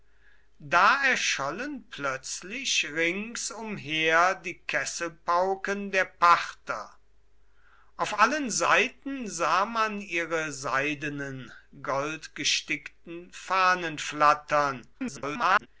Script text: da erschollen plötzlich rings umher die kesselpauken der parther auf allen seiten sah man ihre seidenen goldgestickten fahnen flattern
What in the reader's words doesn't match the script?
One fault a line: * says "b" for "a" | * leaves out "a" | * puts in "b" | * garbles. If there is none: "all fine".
* garbles